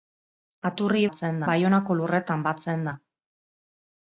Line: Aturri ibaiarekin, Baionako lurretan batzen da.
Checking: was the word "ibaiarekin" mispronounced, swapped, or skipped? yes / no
yes